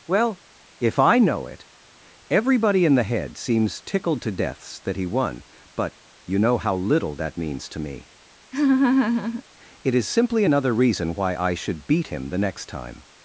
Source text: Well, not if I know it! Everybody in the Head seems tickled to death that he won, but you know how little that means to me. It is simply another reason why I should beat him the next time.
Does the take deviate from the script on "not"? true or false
true